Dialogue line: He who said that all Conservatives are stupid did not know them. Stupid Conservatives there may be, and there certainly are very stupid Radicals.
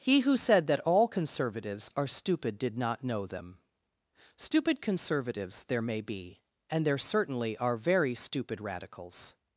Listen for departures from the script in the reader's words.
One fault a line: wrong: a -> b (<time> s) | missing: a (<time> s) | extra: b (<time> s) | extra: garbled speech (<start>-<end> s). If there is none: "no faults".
no faults